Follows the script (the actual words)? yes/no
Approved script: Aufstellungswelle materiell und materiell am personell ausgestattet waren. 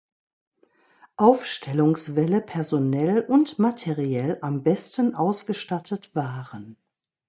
no